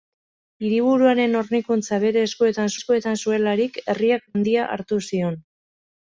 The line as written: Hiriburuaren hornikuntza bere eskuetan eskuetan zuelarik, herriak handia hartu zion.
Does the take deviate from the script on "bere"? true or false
false